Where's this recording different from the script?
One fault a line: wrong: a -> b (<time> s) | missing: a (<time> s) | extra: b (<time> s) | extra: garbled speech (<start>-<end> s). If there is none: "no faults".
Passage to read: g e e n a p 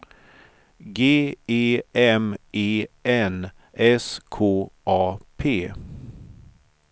extra: m (1.9 s)
extra: s k (3.7 s)